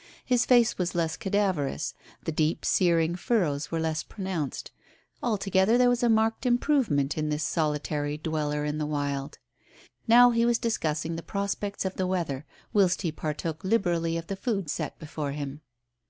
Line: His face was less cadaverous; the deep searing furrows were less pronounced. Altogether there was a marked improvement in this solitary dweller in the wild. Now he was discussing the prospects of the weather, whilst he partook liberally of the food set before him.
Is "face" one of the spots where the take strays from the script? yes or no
no